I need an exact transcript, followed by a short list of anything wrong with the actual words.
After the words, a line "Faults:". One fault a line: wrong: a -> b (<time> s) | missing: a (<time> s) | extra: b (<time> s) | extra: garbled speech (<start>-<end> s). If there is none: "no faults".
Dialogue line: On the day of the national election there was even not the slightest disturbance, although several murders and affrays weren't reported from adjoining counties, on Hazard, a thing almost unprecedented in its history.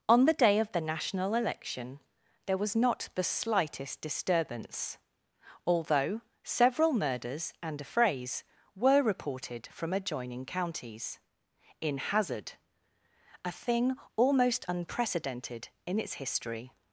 On the day of the national election there was not the slightest disturbance, although several murders and affrays were reported from adjoining counties, in Hazard, a thing almost unprecedented in its history.
Faults:
missing: even (2.8 s)
wrong: weren't -> were (8.8 s)
wrong: on -> in (11.8 s)